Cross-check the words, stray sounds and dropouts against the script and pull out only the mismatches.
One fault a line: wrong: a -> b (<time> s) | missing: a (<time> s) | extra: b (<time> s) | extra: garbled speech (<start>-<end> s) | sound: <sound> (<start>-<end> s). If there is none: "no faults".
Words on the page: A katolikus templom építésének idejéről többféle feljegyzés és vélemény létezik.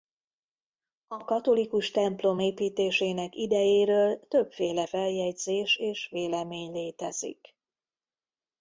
no faults